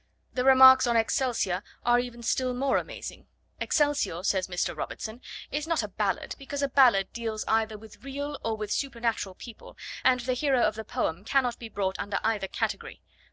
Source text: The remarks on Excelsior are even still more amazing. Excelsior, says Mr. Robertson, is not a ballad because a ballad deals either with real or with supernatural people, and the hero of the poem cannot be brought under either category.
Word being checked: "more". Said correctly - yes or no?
yes